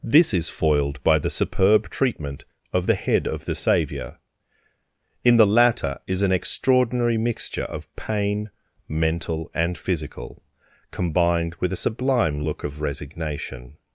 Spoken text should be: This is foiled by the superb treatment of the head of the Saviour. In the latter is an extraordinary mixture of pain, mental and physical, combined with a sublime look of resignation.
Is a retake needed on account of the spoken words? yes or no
no